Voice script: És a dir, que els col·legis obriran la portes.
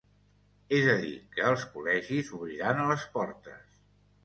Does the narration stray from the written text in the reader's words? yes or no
yes